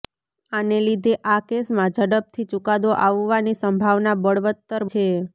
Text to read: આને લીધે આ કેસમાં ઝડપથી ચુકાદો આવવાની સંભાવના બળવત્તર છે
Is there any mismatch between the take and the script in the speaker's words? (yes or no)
no